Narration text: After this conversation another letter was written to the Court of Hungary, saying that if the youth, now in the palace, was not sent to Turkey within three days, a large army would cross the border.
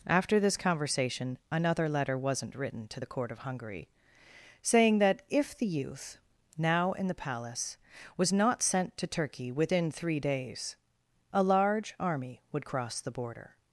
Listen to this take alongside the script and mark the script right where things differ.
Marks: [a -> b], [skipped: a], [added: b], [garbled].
After this conversation another letter [was -> wasn't] written to the Court of Hungary, saying that if the youth, now in the palace, was not sent to Turkey within three days, a large army would cross the border.